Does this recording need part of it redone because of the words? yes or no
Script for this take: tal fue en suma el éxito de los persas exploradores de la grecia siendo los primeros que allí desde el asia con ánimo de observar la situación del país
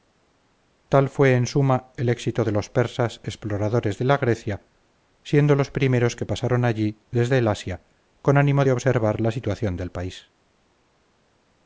yes